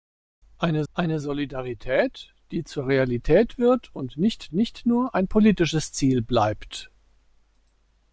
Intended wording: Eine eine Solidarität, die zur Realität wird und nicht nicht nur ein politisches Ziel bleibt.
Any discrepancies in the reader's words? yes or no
no